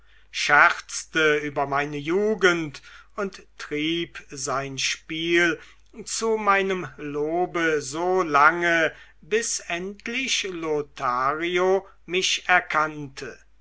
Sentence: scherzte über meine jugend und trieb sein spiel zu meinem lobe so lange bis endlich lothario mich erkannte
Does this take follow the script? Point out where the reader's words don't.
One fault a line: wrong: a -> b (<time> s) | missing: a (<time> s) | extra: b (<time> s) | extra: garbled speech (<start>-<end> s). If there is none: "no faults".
no faults